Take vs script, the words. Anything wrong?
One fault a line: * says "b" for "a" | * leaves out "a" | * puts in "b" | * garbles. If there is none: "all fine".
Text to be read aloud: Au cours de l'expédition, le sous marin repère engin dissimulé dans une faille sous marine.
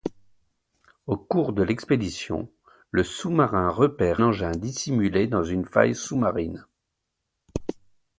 all fine